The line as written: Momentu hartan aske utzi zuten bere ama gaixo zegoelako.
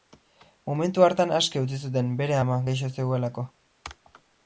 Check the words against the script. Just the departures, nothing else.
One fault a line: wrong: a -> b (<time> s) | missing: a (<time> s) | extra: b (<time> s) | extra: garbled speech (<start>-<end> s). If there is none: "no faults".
no faults